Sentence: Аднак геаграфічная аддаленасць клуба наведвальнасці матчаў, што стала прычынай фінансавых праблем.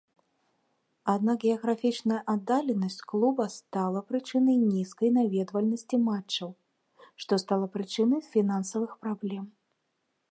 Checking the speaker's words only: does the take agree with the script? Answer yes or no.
no